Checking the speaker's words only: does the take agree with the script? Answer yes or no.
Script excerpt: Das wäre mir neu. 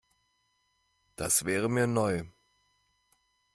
yes